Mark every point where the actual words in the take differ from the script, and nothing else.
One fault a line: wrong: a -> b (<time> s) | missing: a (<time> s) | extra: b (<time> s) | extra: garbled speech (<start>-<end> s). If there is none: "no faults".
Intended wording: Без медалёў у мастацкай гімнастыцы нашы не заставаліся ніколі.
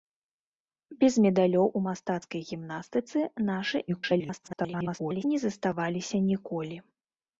extra: garbled speech (3.9-5.2 s)